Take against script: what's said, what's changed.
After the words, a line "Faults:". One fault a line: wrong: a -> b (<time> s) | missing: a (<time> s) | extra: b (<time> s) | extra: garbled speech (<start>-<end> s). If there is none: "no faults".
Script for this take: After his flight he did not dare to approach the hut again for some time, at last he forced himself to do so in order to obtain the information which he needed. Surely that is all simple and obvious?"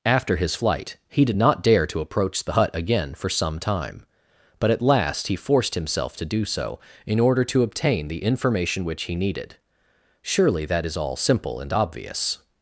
After his flight he did not dare to approach the hut again for some time, but at last he forced himself to do so in order to obtain the information which he needed. Surely that is all simple and obvious?"
Faults:
extra: but (4.6 s)